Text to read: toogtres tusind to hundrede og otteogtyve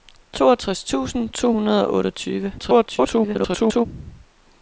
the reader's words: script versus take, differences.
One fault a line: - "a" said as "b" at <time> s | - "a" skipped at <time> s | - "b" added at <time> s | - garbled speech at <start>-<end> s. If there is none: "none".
- garbled speech at 2.6-3.9 s